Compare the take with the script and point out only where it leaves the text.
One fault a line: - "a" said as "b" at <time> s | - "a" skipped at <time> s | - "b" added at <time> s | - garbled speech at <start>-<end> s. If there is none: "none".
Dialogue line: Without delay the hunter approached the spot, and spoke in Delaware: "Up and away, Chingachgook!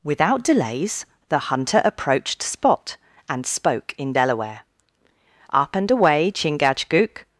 - "delay" said as "delays" at 0.4 s
- "the" skipped at 2.4 s